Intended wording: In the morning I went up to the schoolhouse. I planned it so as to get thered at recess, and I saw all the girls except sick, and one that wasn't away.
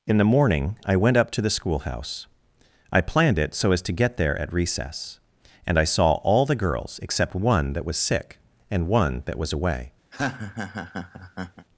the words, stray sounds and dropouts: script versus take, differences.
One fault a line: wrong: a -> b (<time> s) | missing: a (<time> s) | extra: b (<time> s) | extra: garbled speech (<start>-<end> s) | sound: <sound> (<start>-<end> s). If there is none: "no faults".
wrong: thered -> there (4.2 s)
extra: one that was (7.3 s)
wrong: wasn't -> was (9.4 s)
sound: laugh (10.1-11.7 s)